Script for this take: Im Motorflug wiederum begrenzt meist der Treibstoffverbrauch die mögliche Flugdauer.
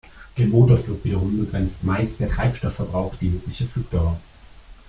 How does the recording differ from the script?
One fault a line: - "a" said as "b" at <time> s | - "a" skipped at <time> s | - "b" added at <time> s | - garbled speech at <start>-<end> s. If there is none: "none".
none